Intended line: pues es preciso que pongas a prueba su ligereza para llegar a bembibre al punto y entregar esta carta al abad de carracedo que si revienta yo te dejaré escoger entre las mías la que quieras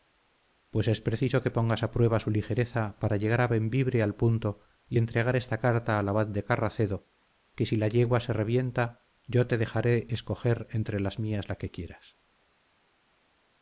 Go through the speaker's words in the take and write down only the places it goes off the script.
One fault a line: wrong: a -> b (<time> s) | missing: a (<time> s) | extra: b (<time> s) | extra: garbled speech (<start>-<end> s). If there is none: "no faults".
extra: la yegua se (7.7 s)